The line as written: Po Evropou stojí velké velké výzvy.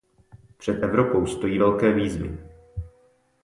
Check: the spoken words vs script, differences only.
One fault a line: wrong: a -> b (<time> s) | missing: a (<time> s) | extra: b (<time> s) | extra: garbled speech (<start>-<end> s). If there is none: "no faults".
wrong: Po -> Před (0.6 s)
missing: velké (1.9 s)